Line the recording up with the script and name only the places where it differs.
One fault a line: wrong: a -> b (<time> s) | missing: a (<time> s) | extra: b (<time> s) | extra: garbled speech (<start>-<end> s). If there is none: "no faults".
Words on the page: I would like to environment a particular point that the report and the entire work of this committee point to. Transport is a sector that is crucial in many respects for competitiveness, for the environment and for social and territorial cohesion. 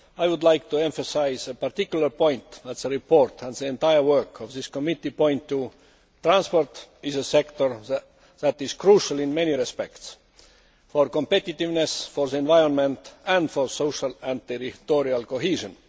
wrong: environment -> emphasise (0.8 s)